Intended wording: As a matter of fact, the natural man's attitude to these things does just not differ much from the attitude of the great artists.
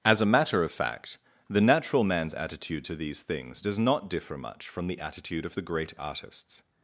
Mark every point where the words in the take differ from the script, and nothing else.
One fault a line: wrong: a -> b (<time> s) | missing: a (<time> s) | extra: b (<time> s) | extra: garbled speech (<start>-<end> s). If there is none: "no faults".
missing: just (3.8 s)